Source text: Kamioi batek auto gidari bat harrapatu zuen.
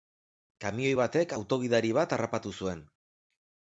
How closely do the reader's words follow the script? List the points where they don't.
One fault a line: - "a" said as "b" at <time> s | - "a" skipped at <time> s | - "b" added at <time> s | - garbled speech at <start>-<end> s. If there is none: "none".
none